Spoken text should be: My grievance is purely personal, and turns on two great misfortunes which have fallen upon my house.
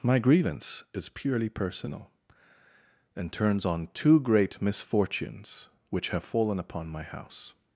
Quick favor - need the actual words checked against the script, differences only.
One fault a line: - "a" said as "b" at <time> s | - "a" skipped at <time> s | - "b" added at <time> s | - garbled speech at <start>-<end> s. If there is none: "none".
none